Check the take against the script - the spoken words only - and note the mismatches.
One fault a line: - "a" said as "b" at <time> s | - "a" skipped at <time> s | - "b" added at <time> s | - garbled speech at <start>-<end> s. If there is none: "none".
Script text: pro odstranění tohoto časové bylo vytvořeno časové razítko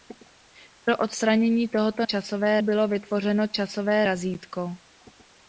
none